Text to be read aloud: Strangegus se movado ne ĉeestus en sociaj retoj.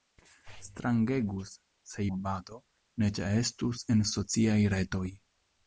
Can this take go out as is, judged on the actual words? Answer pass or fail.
pass